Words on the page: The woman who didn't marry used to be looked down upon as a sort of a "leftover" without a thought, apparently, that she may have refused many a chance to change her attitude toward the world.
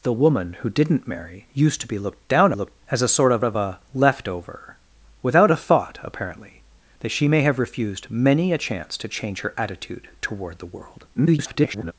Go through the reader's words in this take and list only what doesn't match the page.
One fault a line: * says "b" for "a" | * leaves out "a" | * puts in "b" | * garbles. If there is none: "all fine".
* says "looked" for "upon"
* puts in "of"
* garbles